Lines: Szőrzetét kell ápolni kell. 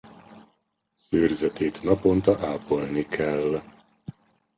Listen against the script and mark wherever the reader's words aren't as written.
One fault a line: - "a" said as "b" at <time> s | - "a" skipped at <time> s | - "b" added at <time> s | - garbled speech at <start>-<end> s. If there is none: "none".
- "kell" said as "naponta" at 1.8 s